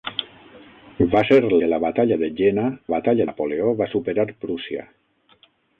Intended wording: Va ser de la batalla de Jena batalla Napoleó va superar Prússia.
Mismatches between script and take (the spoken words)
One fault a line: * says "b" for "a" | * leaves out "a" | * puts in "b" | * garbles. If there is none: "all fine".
all fine